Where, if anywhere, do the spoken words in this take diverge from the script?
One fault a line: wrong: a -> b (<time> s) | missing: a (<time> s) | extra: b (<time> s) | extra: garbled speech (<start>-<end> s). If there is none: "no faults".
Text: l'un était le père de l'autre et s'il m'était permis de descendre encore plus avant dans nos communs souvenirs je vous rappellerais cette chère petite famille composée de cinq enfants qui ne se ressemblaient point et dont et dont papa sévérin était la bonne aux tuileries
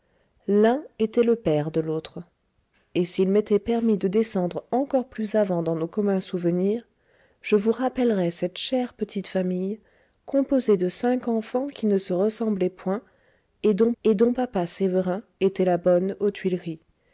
no faults